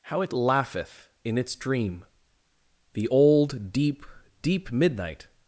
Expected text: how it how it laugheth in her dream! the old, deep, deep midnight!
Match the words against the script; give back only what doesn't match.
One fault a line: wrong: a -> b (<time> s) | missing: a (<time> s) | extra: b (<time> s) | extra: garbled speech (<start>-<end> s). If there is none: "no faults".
missing: how it (0.3 s)
wrong: her -> its (1.4 s)